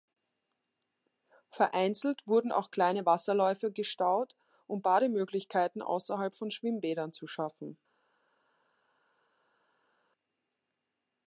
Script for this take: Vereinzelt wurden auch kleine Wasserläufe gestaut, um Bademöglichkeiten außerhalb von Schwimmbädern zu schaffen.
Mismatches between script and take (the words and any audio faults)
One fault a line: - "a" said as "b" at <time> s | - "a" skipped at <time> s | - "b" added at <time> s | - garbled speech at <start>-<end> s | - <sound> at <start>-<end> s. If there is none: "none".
none